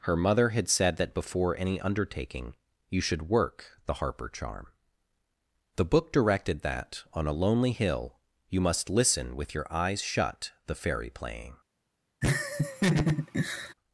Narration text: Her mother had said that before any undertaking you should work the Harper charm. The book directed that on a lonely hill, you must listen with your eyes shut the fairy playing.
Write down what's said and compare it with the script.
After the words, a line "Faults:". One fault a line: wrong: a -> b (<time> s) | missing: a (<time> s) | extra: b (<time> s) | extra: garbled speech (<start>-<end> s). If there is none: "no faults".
Her mother had said that before any undertaking you should work the Harper charm. The book directed that on a lonely hill, you must listen with your eyes shut the fairy playing.
Faults:
no faults